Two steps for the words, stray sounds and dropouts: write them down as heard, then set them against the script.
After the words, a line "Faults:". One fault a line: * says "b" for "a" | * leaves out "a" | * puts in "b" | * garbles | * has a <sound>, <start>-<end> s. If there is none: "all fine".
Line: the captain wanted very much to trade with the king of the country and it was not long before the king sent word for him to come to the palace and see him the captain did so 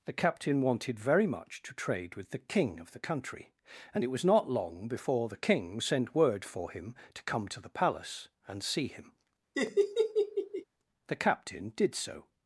the captain wanted very much to trade with the king of the country and it was not long before the king sent word for him to come to the palace and see him the captain did so
Faults:
* has a laugh, 9.5-10.6 s